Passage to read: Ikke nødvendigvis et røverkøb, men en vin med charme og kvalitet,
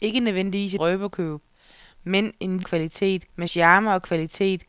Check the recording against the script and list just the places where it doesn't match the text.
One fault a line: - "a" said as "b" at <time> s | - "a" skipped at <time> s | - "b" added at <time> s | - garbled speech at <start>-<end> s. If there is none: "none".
- "et" skipped at 0.8 s
- "vin" said as "kvalitet" at 2.6 s